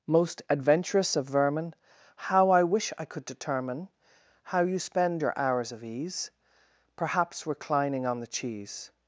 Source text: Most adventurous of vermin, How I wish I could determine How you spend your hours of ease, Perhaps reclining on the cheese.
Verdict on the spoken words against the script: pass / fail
pass